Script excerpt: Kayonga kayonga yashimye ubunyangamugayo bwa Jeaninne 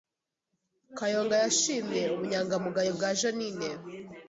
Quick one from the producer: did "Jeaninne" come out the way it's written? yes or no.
yes